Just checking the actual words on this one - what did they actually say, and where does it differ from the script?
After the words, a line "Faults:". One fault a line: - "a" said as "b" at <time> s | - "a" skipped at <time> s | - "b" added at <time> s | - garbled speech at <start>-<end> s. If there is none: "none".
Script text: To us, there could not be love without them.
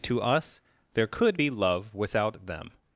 To us, there could be love without them.
Faults:
- "not" skipped at 1.4 s